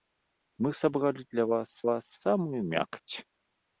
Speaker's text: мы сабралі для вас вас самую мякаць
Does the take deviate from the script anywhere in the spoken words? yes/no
no